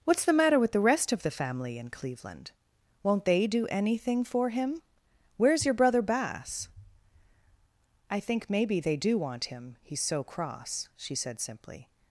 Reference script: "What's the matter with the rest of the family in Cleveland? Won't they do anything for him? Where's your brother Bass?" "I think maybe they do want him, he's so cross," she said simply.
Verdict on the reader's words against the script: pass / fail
pass